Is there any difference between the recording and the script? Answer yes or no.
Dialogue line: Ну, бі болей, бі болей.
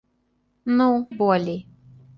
yes